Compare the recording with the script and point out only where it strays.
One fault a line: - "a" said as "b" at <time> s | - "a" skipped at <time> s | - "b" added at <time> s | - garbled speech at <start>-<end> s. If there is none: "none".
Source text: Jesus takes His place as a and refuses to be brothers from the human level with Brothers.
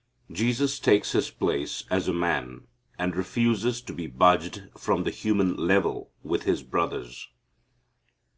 - "man" added at 2.1 s
- "brothers" said as "budged" at 4.1 s
- "His" added at 6.4 s